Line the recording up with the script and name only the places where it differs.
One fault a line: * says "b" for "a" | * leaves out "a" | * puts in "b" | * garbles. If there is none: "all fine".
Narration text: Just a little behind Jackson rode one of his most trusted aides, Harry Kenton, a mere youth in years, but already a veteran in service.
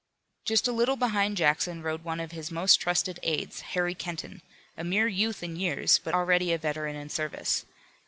all fine